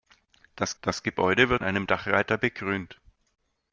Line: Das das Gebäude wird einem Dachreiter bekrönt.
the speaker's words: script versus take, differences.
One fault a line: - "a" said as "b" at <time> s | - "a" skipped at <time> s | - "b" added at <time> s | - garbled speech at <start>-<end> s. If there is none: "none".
none